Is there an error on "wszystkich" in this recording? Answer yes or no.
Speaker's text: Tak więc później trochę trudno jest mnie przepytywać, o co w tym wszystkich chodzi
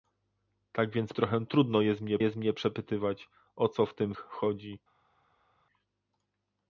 yes